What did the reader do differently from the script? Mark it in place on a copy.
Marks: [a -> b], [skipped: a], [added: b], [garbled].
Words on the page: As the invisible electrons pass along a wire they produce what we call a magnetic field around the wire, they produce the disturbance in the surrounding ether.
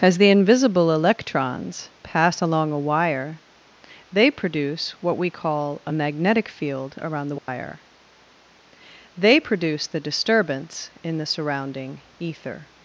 As the invisible electrons pass along a wire they produce what we call a magnetic field around the wire, they produce the disturbance in the surrounding ether.